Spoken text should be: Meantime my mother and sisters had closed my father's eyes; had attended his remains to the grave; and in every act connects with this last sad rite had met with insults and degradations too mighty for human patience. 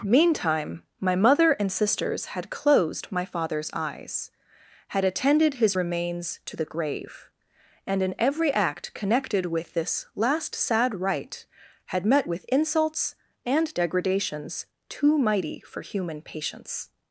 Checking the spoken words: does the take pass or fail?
fail